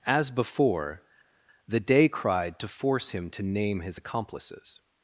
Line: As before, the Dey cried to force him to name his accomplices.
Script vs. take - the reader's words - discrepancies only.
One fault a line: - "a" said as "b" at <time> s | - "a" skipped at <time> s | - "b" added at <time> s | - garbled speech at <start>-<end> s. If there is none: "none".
none